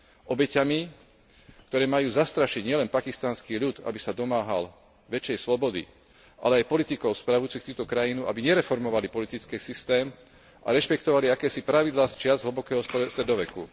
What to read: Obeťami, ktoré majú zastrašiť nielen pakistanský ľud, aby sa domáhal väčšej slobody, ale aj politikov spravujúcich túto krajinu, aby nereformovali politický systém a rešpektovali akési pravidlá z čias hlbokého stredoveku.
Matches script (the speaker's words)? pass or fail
pass